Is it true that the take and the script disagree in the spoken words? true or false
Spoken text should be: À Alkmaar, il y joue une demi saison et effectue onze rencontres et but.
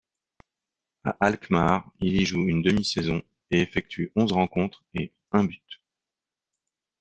true